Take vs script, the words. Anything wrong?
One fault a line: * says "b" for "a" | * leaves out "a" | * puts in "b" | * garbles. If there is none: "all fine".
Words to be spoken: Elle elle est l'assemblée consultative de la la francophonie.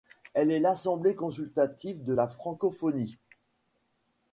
* leaves out "elle"
* leaves out "la"